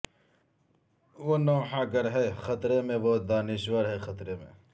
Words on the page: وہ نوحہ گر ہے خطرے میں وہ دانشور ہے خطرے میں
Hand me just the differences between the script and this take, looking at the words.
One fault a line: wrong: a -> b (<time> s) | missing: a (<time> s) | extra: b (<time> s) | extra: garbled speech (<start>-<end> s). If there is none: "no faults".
no faults